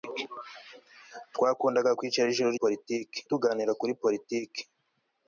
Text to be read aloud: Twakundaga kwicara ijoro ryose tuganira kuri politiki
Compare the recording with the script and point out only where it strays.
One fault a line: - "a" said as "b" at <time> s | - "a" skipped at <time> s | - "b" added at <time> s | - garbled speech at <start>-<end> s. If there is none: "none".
- "ryose" said as "politiki" at 2.6 s